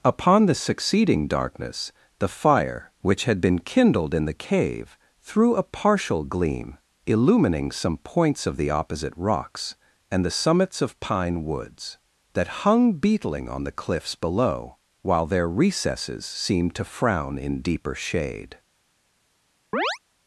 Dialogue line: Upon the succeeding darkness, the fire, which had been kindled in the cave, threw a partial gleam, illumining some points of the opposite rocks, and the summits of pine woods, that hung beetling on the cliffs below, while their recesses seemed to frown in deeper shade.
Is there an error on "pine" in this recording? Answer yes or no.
no